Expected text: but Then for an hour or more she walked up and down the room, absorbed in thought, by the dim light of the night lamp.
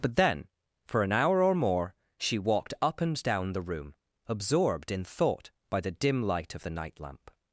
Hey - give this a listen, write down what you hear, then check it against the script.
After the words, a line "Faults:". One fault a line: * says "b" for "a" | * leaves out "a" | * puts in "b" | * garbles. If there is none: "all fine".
but Then for an hour or more she walked up and down the room, absorbed in thought, by the dim light of the night lamp.
Faults:
all fine